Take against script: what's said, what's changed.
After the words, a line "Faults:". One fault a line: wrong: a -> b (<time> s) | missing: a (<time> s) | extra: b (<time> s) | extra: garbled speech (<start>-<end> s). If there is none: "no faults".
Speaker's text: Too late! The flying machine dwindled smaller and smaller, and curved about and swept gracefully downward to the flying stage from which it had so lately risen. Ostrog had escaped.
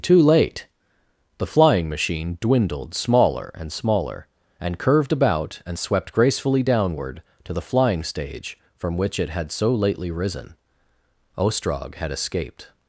Too late! The flying machine dwindled smaller and smaller, and curved about and swept gracefully downward to the flying stage from which it had so lately risen. Ostrog had escaped.
Faults:
no faults